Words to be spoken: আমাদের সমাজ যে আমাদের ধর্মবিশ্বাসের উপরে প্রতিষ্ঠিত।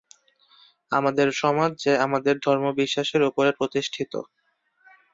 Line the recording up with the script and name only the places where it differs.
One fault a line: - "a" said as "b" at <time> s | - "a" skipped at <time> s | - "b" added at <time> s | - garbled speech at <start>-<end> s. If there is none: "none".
none